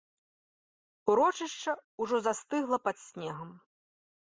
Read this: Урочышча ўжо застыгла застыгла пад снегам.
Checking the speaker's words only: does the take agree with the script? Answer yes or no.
no